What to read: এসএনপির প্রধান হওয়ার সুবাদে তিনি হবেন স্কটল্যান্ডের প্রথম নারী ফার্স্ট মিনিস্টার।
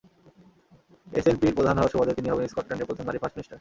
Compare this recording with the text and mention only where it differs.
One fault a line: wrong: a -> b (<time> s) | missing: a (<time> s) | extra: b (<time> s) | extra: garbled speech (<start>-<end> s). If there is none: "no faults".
no faults